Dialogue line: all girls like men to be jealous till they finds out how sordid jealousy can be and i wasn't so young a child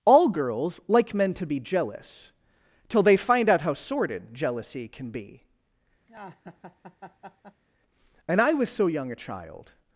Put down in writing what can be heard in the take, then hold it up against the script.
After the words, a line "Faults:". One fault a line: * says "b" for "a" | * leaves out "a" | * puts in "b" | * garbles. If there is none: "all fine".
all girls like men to be jealous till they find out how sordid jealousy can be and i was so young a child
Faults:
* says "find" for "finds"
* says "was" for "wasn't"